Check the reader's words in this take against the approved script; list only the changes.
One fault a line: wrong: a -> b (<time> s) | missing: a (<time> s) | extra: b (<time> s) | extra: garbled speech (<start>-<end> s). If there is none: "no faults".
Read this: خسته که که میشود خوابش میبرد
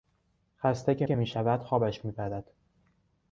no faults